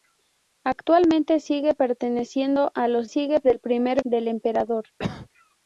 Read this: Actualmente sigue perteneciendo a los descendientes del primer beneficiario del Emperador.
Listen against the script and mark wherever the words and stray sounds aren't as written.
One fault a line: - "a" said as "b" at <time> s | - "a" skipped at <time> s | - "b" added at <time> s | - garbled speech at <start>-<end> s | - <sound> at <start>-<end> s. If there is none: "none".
- "descendientes" said as "sigue" at 3.1 s
- "beneficiario" skipped at 4.0 s
- cough at 5.0-5.3 s